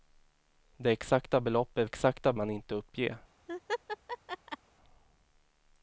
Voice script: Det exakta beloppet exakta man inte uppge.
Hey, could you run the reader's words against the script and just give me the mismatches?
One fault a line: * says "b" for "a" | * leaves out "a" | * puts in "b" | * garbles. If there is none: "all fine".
all fine